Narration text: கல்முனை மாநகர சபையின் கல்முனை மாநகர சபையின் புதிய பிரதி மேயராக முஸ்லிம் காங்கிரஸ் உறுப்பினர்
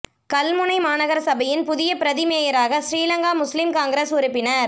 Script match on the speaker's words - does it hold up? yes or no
no